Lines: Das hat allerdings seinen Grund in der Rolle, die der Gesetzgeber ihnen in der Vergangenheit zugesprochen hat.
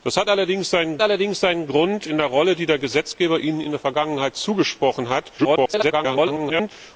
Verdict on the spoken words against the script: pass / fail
fail